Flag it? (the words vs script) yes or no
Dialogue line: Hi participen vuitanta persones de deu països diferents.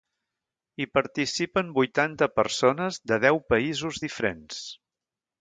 no